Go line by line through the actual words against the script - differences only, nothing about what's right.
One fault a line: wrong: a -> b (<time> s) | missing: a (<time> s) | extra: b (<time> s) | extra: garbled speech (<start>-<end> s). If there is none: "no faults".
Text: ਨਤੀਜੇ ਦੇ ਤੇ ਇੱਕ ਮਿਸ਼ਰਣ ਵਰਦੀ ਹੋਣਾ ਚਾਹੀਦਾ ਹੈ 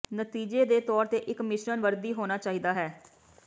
extra: ਤੌਰ (0.8 s)